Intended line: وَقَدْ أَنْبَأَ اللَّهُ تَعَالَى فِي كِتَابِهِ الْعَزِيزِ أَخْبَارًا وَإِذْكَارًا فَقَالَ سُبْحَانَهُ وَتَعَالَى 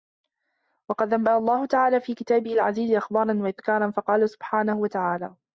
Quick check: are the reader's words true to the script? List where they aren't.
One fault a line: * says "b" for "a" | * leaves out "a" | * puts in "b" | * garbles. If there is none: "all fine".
all fine